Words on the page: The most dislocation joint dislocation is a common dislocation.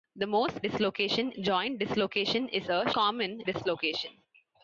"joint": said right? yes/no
yes